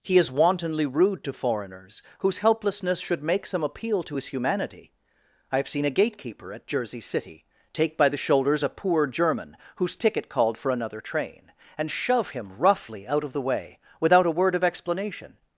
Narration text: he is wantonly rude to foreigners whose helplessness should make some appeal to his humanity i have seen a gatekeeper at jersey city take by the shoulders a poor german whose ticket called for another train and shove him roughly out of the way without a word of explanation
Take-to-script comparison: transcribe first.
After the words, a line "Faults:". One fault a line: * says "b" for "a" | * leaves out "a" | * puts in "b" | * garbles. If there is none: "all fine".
he is wantonly rude to foreigners whose helplessness should make some appeal to his humanity i have seen a gatekeeper at jersey city take by the shoulders a poor german whose ticket called for another train and shove him roughly out of the way without a word of explanation
Faults:
all fine